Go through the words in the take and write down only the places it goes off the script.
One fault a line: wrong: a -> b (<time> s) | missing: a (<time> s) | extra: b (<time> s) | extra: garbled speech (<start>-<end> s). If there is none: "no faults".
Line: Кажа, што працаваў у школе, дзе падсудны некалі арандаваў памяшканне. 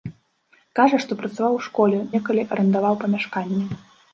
missing: дзе падсудны (2.0 s)